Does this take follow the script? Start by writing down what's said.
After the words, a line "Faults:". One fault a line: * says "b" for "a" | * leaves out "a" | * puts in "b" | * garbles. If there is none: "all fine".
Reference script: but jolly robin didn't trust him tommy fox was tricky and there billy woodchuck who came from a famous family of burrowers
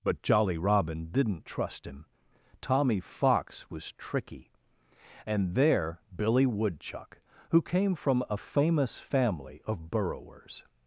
but jolly robin didn't trust him tommy fox was tricky and there billy woodchuck who came from a famous family of burrowers
Faults:
all fine